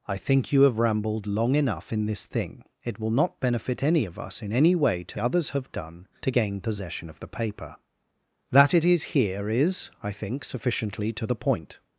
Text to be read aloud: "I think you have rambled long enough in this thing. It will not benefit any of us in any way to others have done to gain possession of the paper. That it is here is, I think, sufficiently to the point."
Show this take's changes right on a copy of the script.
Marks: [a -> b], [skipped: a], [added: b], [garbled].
"I think you have rambled long enough in this thing. It will not benefit any of us in any way to others have done to gain possession of the paper. That it is here is, I think, sufficiently to the point."